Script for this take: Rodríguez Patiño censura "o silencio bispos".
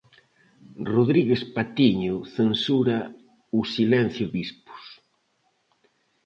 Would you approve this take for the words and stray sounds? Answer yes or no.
yes